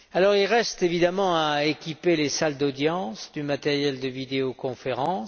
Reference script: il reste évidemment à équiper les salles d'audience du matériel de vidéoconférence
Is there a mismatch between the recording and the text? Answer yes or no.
no